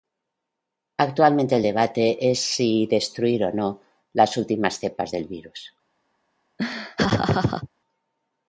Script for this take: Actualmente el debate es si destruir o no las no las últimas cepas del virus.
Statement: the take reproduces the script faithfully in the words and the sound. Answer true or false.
false